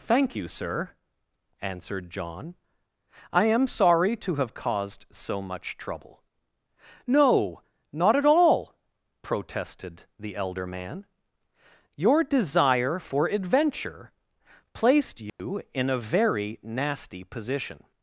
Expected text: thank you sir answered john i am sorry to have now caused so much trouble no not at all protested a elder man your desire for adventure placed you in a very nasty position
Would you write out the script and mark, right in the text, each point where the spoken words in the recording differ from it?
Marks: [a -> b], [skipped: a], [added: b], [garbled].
thank you sir answered john i am sorry to have [skipped: now] caused so much trouble no not at all protested [a -> the] elder man your desire for adventure placed you in a very nasty position